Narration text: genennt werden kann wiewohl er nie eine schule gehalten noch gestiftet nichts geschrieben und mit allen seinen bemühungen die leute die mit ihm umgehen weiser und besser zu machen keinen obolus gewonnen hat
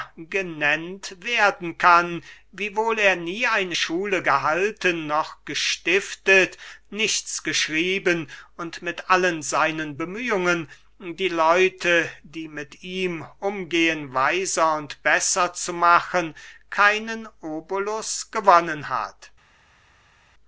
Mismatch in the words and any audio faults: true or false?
false